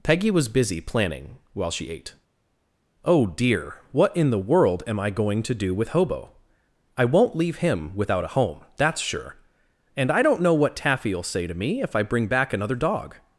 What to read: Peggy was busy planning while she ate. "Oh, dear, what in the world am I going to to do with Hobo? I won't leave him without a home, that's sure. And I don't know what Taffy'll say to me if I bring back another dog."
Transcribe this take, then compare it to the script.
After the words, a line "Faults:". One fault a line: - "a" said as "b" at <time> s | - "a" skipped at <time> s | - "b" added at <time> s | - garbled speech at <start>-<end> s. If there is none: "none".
Peggy was busy planning while she ate. "Oh, dear, what in the world am I going to do with Hobo? I won't leave him without a home, that's sure. And I don't know what Taffy'll say to me if I bring back another dog."
Faults:
- "to" skipped at 5.5 s